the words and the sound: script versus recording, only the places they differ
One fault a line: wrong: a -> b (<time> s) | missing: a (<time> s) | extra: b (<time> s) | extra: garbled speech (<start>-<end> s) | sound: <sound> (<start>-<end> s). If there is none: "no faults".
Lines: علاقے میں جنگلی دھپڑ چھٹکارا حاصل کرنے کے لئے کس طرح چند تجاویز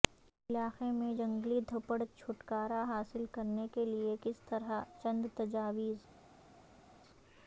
no faults